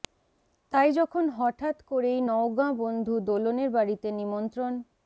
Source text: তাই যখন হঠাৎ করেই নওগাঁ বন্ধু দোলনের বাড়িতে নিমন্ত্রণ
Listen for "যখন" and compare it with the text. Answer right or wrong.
right